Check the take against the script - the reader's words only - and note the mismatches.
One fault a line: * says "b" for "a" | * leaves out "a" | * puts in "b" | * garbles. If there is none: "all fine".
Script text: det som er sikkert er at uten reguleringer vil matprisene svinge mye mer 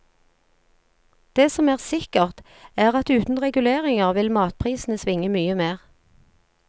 all fine